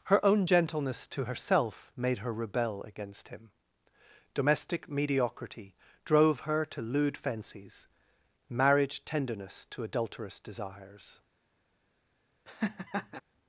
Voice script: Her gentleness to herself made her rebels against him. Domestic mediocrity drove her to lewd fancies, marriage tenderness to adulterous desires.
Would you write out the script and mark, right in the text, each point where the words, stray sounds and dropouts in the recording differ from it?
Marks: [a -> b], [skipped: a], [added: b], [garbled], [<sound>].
Her [added: own] gentleness to herself made her [rebels -> rebel] against him. Domestic mediocrity drove her to lewd fancies, marriage tenderness to adulterous desires. [laugh]